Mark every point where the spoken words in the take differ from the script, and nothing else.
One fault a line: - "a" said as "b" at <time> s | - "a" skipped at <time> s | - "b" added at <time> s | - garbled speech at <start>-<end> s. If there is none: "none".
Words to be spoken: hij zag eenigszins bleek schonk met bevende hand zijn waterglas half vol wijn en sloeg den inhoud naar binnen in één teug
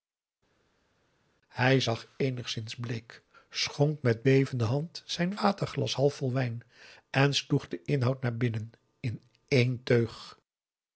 none